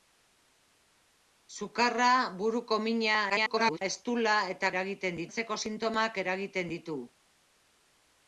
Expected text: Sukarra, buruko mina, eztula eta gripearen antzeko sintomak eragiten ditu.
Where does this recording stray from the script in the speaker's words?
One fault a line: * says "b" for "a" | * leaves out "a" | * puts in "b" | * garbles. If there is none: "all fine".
* garbles
* says "eragiten" for "gripearen"